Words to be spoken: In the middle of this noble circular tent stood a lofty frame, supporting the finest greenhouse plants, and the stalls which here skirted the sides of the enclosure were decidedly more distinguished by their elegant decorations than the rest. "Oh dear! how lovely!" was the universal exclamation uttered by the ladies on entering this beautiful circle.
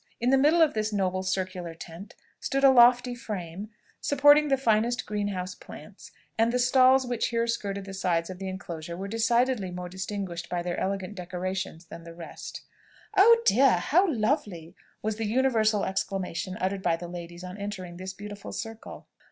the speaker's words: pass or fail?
pass